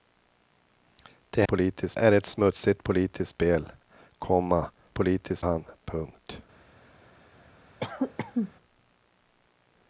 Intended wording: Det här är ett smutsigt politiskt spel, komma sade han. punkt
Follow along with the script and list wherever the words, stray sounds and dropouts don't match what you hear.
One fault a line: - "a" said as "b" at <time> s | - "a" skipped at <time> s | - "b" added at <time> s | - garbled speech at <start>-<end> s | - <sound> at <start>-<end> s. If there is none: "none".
- "här" said as "politiskt" at 1.5 s
- "sade" said as "politiskt" at 4.9 s
- cough at 7.8-8.5 s